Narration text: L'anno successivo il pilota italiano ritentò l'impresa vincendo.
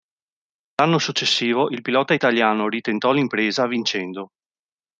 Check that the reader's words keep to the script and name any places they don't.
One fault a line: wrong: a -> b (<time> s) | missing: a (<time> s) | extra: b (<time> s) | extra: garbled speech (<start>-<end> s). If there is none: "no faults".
no faults